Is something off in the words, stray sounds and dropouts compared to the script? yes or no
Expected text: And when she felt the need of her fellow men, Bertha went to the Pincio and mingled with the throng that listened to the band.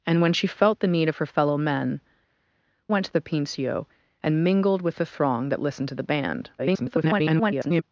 yes